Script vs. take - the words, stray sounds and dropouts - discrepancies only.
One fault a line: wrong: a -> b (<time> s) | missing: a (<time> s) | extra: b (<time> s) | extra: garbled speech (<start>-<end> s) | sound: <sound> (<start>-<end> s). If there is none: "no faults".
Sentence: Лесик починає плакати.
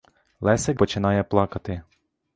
no faults